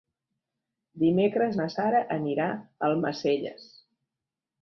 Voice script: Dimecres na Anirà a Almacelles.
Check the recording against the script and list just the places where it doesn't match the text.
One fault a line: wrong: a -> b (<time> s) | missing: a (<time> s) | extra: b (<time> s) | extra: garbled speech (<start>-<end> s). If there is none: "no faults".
extra: Sara (1.7 s)